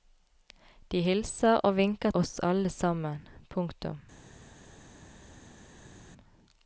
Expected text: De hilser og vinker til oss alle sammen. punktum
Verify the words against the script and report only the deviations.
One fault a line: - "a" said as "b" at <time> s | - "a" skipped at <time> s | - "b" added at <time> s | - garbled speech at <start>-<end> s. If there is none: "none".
- "til" skipped at 2.1 s